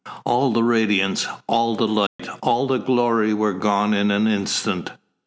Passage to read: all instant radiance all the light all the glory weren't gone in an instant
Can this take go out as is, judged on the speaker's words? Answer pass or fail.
fail